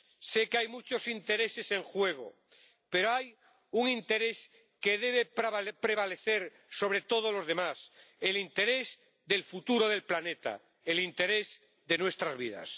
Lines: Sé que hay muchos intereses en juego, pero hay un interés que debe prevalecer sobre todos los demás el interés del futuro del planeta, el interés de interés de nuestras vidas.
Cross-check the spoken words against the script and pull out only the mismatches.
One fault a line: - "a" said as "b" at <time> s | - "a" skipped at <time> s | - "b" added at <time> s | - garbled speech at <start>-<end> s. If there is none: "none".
- "interés de" skipped at 12.0 s